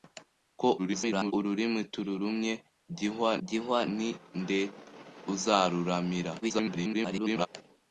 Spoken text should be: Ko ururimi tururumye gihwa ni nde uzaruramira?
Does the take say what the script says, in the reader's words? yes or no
no